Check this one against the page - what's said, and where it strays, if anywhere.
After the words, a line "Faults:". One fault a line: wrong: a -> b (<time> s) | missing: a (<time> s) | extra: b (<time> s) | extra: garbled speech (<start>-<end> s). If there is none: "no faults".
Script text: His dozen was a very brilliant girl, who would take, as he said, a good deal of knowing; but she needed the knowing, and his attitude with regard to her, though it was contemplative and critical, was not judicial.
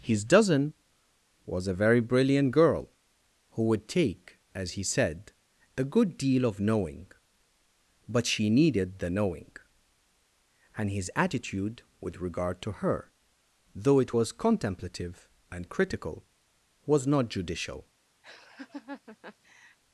His dozen was a very brilliant girl, who would take, as he said, a good deal of knowing; but she needed the knowing, and his attitude with regard to her, though it was contemplative and critical, was not judicial.
Faults:
no faults